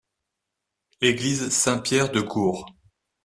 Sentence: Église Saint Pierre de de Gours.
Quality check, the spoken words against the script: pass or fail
fail